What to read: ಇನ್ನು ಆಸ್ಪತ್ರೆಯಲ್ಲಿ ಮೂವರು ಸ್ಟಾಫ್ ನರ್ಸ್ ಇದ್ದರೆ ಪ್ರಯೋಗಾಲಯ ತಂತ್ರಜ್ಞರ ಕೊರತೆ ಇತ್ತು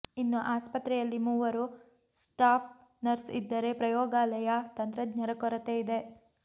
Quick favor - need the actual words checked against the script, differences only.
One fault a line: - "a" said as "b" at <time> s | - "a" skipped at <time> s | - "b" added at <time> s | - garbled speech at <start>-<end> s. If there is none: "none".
- "ಇತ್ತು" said as "ಇದೆ" at 5.8 s